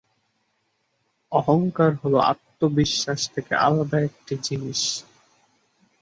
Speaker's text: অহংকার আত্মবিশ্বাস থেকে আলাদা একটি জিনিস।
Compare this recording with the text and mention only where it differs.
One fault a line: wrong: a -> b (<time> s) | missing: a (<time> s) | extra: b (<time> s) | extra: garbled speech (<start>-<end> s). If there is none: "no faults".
extra: হল (2.0 s)